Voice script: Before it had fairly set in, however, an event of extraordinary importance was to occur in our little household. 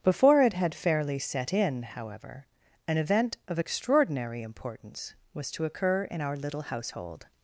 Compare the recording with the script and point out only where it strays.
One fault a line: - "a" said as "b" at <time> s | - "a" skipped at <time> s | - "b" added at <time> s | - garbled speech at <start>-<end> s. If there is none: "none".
none